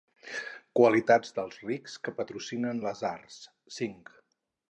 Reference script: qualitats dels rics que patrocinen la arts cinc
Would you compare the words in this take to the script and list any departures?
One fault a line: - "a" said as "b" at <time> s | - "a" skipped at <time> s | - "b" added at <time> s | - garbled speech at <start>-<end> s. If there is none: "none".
- "la" said as "les" at 2.9 s